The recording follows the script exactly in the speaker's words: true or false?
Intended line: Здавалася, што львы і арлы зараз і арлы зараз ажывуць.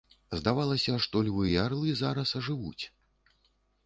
false